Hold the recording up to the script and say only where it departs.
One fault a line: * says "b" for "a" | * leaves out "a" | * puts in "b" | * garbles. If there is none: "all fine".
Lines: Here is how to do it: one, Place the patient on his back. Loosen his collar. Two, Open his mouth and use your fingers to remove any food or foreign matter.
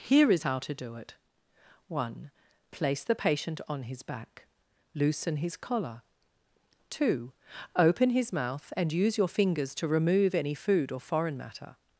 all fine